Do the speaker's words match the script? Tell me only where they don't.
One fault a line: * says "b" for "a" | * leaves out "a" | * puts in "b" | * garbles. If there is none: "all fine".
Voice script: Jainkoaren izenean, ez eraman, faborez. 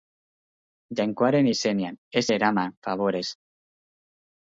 all fine